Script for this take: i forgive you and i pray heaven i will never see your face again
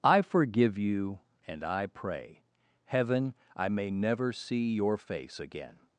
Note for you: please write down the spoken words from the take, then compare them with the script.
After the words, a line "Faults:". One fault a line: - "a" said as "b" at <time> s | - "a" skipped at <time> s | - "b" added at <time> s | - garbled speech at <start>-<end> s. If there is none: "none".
i forgive you and i pray heaven i may never see your face again
Faults:
- "will" said as "may" at 3.7 s